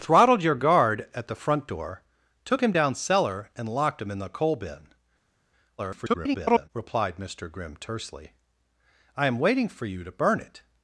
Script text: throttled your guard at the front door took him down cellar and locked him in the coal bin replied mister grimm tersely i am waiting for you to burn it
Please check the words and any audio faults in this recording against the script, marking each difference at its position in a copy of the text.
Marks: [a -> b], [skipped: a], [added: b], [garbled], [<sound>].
throttled your guard at the front door took him down cellar and locked him in the coal bin [garbled] replied mister grimm tersely i am waiting for you to burn it